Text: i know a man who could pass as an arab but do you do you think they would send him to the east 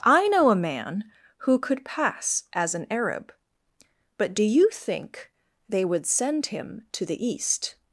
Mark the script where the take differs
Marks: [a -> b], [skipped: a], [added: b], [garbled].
i know a man who could pass as an arab but do you [skipped: do you] think they would send him to the east